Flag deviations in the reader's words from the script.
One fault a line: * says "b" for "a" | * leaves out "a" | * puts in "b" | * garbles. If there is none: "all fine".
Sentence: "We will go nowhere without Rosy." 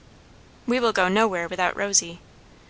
all fine